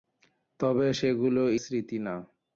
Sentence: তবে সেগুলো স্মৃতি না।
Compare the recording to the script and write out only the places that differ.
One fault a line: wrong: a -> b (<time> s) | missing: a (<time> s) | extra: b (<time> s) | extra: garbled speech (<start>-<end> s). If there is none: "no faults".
no faults